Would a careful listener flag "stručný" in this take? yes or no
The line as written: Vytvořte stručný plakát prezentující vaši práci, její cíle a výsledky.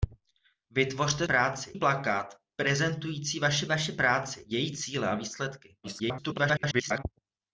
yes